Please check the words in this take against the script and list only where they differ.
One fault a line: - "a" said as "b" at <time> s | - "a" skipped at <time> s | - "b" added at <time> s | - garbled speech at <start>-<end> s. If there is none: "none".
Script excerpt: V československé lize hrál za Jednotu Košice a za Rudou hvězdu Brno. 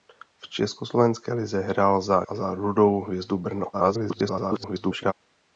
- "Jednotu Košice" skipped at 2.2 s
- garbled speech at 3.7-5.1 s